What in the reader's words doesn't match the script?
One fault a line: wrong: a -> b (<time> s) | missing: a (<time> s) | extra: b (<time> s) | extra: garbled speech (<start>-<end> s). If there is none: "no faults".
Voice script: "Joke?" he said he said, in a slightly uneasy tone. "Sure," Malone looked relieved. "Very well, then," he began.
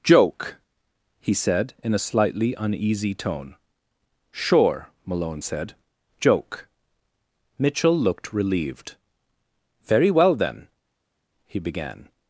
missing: he said (1.7 s)
extra: said Joke Mitchell (5.4 s)